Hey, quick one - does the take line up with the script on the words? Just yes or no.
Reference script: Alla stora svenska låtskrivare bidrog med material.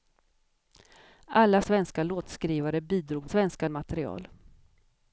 no